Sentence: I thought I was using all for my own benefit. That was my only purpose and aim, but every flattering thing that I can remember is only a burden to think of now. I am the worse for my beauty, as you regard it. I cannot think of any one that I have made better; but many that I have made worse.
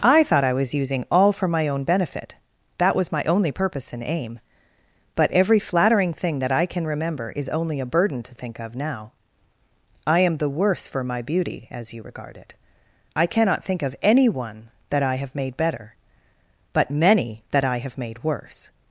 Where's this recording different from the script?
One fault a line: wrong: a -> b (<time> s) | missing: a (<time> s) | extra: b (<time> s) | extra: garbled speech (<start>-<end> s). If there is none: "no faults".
no faults